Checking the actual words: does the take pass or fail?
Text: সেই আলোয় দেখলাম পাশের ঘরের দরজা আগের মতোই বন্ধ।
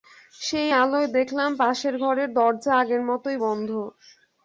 pass